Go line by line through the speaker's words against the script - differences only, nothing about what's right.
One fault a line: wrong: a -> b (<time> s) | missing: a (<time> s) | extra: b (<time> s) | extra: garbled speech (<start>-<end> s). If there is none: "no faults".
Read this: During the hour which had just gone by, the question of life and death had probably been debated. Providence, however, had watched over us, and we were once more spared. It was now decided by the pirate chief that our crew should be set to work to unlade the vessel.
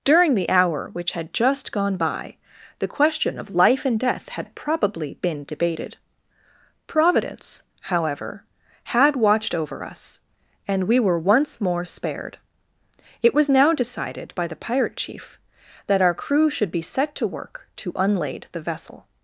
no faults